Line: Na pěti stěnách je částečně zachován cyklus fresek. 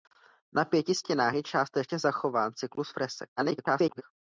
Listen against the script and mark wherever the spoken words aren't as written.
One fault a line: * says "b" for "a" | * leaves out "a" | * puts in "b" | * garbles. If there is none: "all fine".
* garbles